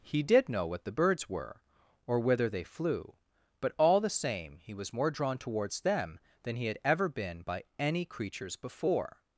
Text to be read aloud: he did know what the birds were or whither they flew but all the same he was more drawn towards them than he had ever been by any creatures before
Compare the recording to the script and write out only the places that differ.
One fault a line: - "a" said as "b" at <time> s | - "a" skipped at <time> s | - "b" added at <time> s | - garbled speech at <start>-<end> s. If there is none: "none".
none